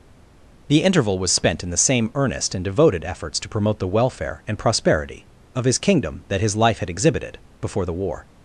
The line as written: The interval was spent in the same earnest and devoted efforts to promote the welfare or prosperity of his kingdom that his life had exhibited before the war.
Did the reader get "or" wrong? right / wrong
wrong